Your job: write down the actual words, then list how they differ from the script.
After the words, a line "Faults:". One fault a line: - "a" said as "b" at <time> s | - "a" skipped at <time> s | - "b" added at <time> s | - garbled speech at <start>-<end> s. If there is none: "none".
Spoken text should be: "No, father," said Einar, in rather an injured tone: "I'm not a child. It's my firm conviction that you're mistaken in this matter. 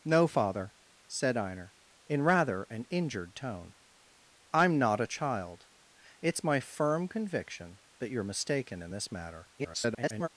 "No, father," said Einar, in rather an injured tone: "I'm not a child. It's my firm conviction that you're mistaken in this matter. [garbled]
Faults:
- garbled speech at 9.6-10.3 s